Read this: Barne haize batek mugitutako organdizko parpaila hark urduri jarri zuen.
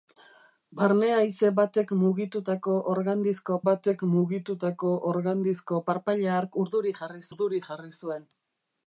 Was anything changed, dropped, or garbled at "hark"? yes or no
no